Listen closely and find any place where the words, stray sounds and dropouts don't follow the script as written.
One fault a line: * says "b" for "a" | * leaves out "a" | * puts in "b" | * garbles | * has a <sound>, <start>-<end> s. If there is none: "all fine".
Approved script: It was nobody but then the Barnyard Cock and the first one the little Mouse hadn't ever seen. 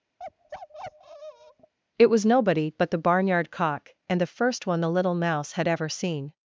* has a bark, 0.2-1.7 s
* leaves out "then"
* says "had" for "hadn't"